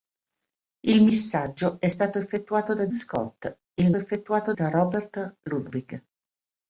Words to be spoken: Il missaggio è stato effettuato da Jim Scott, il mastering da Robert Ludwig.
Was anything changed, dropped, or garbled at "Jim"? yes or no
yes